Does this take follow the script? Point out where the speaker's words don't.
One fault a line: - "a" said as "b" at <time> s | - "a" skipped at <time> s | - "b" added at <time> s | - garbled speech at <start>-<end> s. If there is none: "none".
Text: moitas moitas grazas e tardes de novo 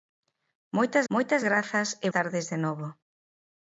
none